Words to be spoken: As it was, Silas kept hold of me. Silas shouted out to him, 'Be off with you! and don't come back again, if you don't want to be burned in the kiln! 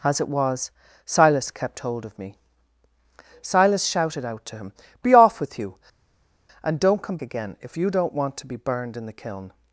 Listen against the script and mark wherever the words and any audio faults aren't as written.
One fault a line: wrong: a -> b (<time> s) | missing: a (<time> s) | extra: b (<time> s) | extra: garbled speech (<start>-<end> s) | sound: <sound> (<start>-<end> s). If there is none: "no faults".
missing: back (7.2 s)